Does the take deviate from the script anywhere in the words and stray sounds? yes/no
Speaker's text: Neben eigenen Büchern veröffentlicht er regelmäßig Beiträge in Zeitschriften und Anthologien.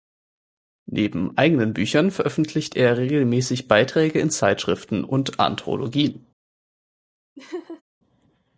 yes